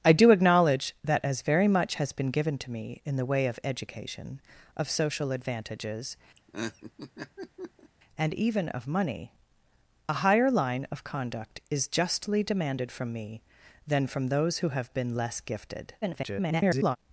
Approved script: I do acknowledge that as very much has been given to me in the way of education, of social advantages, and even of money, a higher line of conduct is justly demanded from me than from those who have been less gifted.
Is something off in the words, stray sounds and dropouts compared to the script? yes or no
yes